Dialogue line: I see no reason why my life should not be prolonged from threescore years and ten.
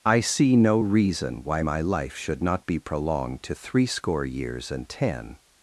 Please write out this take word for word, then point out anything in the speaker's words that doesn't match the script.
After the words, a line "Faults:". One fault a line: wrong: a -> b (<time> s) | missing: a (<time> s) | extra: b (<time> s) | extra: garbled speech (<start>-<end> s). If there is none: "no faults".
I see no reason why my life should not be prolonged to threescore years and ten.
Faults:
wrong: from -> to (3.4 s)